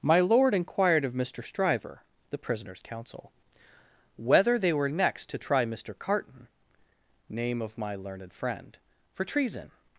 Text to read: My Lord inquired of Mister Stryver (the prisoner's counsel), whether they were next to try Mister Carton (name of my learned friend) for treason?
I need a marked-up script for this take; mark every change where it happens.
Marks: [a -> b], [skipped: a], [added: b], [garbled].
My Lord inquired of Mister Stryver (the prisoner's counsel), whether they were next to try Mister Carton (name of my learned friend) for treason?